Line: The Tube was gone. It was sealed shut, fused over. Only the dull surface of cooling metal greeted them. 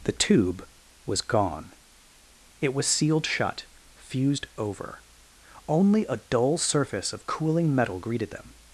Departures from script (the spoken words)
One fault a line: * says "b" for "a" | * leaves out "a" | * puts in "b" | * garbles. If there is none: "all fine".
* says "a" for "the"